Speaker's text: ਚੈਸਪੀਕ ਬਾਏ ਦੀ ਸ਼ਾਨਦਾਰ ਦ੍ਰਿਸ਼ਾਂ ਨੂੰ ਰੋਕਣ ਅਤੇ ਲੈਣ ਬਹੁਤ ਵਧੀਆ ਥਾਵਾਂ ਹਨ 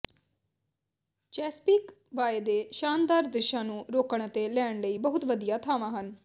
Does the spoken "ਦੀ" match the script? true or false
false